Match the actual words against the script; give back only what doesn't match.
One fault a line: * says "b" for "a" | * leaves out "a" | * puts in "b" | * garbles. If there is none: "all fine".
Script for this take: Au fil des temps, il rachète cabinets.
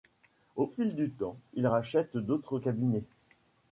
* says "du" for "des"
* puts in "d'autres"